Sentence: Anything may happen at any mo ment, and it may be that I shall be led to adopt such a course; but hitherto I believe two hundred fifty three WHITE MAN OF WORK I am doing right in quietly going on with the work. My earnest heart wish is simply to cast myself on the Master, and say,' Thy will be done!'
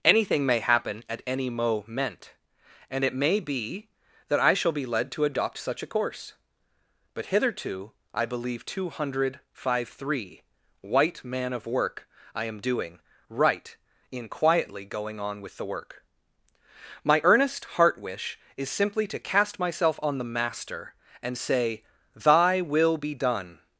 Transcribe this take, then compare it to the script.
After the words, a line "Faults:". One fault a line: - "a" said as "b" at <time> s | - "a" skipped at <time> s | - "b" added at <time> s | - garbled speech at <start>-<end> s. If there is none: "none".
Anything may happen at any mo ment, and it may be that I shall be led to adopt such a course; but hitherto I believe two hundred five three WHITE MAN OF WORK I am doing right in quietly going on with the work. My earnest heart wish is simply to cast myself on the Master, and say,' Thy will be done!'
Faults:
- "fifty" said as "five" at 9.5 s